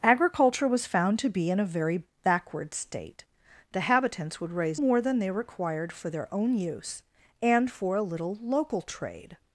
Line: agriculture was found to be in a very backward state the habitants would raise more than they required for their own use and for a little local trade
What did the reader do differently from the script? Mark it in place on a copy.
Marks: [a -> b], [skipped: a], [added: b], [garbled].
agriculture was found to be in a very backward state the habitants would raise more than they required for their own use and for a little local trade